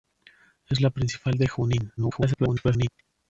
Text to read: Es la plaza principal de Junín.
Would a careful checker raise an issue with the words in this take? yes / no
yes